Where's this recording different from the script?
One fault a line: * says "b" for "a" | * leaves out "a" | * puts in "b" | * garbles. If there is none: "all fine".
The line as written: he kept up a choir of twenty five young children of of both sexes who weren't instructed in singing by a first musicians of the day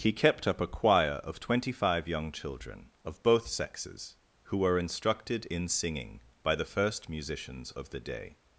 * leaves out "of"
* says "were" for "weren't"
* says "the" for "a"